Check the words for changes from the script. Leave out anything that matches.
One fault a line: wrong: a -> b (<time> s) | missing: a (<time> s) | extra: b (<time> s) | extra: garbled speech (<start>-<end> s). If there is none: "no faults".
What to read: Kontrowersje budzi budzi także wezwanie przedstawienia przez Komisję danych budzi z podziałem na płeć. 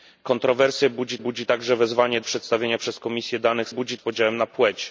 no faults